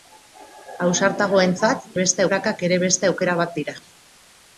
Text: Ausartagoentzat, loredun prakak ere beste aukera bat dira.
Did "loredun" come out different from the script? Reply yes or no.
yes